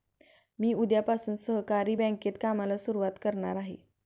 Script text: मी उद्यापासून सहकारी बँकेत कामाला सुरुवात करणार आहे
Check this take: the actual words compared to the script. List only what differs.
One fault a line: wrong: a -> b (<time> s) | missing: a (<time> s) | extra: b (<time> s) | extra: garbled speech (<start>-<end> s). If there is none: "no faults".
no faults